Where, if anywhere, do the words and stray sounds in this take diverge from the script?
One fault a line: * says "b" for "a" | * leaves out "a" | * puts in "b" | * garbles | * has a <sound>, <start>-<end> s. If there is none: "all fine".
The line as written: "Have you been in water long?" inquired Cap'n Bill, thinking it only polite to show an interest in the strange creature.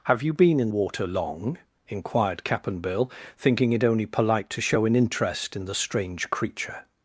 all fine